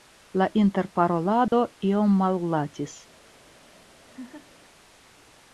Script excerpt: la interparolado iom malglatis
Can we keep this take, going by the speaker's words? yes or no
yes